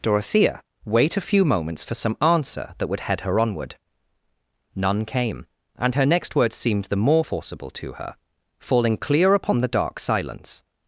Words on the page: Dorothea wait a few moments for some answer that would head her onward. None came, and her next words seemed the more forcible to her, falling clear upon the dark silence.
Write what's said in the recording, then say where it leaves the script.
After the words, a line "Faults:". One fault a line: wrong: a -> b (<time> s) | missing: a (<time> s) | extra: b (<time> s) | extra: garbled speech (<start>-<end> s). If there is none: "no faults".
Dorothea wait a few moments for some answer that would head her onward. None came, and her next words seemed the more forcible to her, falling clear upon the dark silence.
Faults:
no faults